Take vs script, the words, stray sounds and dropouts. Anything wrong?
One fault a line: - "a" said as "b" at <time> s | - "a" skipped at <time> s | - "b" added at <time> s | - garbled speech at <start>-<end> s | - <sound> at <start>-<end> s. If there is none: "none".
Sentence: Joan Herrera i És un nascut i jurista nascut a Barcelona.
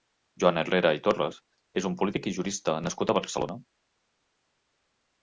- "Torres" added at 1.1 s
- "nascut" said as "polític" at 2.0 s